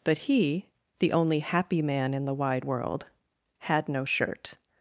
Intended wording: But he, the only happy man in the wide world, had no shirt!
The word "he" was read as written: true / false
true